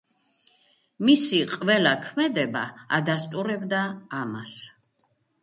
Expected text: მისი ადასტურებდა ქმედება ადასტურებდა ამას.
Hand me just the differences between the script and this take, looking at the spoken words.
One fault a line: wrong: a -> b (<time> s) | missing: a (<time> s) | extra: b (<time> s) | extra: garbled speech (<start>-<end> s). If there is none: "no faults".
wrong: ადასტურებდა -> ყველა (1.5 s)